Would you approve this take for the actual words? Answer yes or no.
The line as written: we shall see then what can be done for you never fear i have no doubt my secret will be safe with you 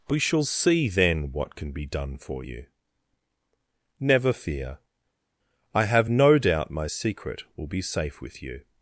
yes